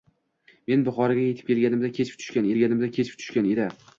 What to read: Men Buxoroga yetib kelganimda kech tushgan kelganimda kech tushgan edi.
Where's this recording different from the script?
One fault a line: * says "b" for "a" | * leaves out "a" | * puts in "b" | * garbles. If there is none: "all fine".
all fine